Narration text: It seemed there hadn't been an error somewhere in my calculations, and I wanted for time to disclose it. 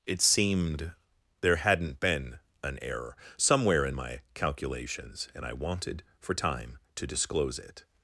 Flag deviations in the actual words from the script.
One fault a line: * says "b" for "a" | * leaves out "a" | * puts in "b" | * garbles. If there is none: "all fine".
all fine